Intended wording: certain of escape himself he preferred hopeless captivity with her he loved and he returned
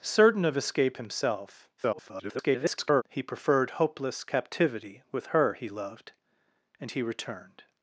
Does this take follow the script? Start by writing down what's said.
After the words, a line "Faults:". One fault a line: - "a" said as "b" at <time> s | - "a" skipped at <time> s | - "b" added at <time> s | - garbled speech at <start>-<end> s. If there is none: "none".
certain of escape himself [garbled] he preferred hopeless captivity with her he loved and he returned
Faults:
- garbled speech at 1.8-3.0 s